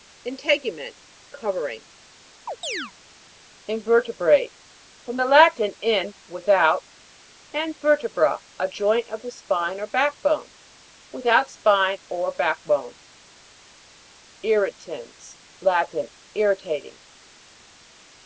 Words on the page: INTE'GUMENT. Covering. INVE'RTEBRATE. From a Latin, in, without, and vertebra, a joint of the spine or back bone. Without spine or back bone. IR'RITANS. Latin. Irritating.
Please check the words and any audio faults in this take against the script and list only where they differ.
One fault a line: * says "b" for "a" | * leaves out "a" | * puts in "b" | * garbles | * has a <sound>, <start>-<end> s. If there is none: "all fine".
* has a chirp, 2.5-2.9 s
* says "the" for "a"